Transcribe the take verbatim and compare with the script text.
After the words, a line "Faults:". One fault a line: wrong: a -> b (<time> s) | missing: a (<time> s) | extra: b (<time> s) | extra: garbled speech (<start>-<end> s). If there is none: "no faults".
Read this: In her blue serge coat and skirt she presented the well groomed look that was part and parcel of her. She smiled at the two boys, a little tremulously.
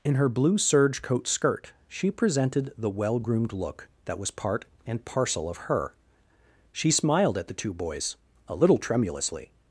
In her blue serge coat skirt she presented the well groomed look that was part and parcel of her. She smiled at the two boys, a little tremulously.
Faults:
missing: and (1.3 s)